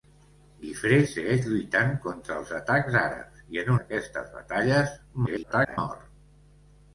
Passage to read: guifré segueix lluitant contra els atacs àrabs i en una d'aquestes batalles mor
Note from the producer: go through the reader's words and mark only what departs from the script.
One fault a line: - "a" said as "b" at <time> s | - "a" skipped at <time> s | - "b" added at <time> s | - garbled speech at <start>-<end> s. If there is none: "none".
- "una" skipped at 3.7 s
- garbled speech at 5.3-5.8 s